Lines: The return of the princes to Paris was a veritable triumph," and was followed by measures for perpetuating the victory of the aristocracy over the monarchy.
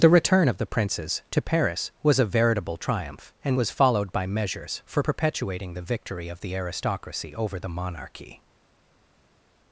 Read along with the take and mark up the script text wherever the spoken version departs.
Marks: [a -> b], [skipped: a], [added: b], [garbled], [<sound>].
The return of the princes to Paris was a veritable triumph," and was followed by measures for perpetuating the victory of the aristocracy over the monarchy.